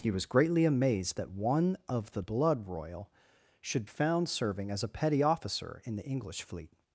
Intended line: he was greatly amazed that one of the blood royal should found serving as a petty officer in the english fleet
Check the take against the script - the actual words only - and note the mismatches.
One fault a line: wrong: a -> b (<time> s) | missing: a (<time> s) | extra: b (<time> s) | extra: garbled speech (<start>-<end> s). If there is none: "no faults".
no faults